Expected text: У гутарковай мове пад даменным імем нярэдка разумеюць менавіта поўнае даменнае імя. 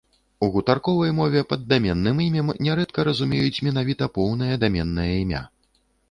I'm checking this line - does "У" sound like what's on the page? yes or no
yes